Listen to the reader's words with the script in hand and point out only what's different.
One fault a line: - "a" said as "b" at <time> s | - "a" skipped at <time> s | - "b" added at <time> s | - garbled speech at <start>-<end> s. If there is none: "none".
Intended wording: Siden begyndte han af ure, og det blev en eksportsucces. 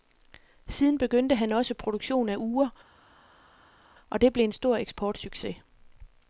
- "også produktion" added at 1.5 s
- "stor" added at 4.5 s